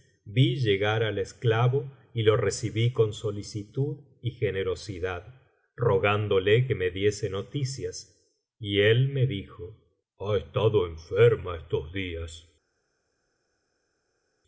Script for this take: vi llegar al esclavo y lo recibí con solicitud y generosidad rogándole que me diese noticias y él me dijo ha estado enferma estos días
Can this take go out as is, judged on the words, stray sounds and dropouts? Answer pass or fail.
pass